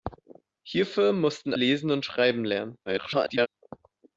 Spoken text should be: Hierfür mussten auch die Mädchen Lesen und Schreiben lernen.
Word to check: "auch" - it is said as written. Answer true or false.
false